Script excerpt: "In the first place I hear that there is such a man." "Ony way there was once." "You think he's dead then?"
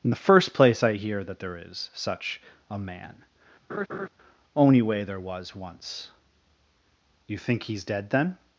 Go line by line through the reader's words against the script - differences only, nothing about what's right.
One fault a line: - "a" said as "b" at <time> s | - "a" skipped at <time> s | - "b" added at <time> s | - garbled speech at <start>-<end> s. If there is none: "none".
- "Ony" said as "Only" at 4.5 s